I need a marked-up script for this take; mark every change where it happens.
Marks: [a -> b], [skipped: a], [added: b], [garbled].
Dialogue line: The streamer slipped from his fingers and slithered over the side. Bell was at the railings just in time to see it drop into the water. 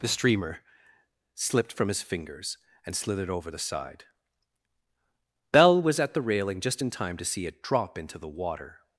The streamer slipped from his fingers and slithered over the side. Bell was at the [railings -> railing] just in time to see it drop into the water.